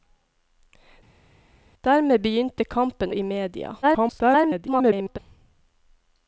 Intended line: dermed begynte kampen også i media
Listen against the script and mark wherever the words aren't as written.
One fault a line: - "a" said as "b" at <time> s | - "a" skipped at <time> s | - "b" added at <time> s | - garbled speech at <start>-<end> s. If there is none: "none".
- "også" skipped at 3.1 s
- garbled speech at 3.8-5.2 s